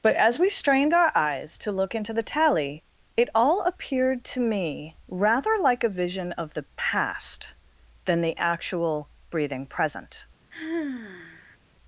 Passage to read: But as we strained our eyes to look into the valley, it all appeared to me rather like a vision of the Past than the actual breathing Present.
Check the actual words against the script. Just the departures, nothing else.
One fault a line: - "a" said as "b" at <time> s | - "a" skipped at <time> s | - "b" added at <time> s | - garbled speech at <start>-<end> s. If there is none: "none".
- "valley" said as "tally" at 2.2 s